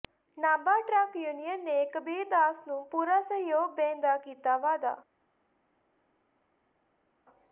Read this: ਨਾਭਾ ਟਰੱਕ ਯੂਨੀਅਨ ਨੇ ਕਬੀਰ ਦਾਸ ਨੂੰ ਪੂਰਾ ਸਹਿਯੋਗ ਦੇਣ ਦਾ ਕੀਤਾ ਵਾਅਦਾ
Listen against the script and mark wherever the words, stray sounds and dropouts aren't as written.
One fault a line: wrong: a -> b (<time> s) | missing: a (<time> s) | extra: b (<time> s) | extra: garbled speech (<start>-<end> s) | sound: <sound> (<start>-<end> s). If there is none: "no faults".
no faults